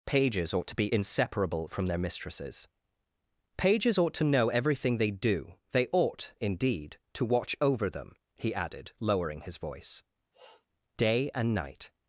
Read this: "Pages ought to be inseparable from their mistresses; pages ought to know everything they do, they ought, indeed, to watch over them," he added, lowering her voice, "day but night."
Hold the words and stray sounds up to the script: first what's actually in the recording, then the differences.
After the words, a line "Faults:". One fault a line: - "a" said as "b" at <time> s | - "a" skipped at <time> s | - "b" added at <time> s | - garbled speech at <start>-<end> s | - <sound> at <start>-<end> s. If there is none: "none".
"Pages ought to be inseparable from their mistresses; pages ought to know everything they do, they ought, indeed, to watch over them," he added, lowering his voice, "day and night."
Faults:
- "her" said as "his" at 9.4 s
- sniff at 10.3-10.7 s
- "but" said as "and" at 11.3 s